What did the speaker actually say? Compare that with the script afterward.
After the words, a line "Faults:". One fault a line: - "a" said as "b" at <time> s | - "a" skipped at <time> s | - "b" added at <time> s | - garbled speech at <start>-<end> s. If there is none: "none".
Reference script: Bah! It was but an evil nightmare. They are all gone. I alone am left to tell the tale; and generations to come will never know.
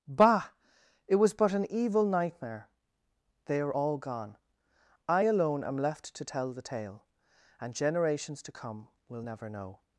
Bah! It was but an evil nightmare. They are all gone. I alone am left to tell the tale; and generations to come will never know.
Faults:
none